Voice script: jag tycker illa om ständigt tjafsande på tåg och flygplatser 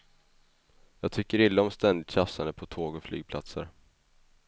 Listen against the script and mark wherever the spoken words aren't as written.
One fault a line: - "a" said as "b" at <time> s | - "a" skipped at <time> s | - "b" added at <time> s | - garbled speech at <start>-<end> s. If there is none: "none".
none